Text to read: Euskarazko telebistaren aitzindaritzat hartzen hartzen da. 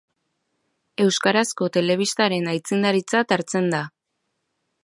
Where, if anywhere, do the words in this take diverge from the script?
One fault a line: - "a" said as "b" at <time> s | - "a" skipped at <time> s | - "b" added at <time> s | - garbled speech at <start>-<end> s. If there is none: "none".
- "hartzen" skipped at 3.7 s